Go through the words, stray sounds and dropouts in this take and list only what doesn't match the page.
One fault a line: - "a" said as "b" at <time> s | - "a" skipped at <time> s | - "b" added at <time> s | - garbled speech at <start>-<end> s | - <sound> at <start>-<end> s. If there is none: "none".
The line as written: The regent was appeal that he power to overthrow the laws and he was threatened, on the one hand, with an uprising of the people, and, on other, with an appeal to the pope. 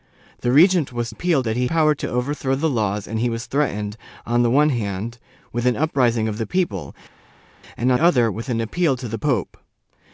none